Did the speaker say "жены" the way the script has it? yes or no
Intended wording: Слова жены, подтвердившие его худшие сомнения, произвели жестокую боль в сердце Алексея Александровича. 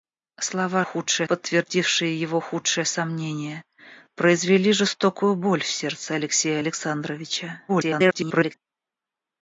no